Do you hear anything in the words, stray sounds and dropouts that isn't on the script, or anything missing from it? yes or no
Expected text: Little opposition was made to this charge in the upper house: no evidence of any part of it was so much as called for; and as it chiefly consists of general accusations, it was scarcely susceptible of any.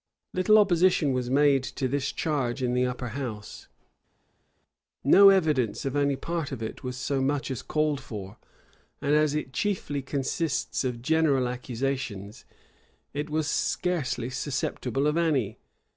no